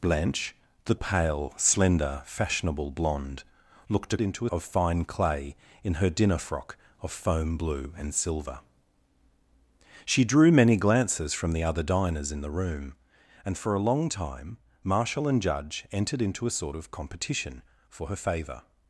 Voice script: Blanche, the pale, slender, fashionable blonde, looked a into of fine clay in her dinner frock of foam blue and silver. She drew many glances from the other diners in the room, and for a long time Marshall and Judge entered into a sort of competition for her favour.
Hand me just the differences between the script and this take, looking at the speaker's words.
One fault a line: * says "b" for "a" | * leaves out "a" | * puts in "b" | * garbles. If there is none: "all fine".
all fine